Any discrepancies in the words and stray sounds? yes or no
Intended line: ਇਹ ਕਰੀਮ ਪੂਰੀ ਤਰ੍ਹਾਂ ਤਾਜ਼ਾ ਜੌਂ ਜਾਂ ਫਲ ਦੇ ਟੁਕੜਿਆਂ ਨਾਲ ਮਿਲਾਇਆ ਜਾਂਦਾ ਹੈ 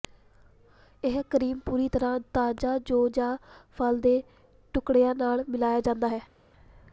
no